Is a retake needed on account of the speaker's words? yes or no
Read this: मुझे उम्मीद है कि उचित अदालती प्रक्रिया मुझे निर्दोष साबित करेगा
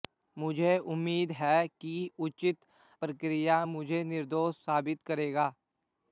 yes